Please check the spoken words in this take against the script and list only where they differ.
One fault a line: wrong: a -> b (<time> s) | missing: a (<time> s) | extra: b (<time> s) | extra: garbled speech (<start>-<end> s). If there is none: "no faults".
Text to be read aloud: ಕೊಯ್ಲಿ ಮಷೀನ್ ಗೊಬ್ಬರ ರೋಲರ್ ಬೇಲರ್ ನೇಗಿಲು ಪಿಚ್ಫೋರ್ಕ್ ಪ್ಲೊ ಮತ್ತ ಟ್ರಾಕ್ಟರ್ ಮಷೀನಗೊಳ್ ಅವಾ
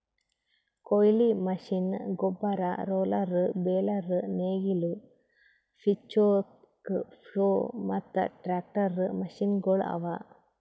no faults